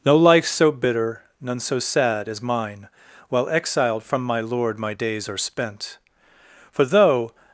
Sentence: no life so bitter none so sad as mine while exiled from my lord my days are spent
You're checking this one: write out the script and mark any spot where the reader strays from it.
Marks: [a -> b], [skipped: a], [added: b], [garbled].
no life so bitter none so sad as mine while exiled from my lord my days are spent [added: for though]